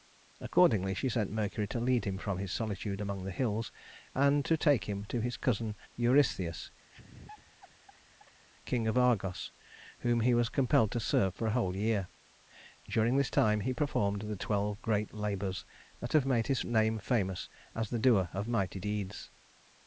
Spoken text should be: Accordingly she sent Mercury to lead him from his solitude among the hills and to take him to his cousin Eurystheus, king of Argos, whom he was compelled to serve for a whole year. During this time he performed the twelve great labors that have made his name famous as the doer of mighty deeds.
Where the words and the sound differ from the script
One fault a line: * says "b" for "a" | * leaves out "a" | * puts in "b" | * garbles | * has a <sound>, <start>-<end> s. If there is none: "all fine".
* has a laugh, 6.9-8.4 s